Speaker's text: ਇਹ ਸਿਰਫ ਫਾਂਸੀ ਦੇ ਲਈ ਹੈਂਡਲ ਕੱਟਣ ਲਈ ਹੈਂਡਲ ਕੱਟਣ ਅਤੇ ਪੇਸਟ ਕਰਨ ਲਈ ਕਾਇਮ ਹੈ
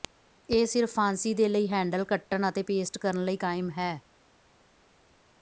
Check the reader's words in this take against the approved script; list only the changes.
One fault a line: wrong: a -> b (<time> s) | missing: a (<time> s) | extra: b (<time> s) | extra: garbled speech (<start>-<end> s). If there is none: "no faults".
missing: ਲਈ ਹੈਂਡਲ ਕੱਟਣ (2.5 s)